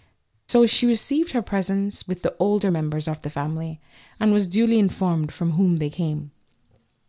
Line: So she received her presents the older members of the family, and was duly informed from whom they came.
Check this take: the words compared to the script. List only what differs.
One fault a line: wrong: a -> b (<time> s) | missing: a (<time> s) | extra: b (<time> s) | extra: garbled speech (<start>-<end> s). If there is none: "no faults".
extra: with (2.1 s)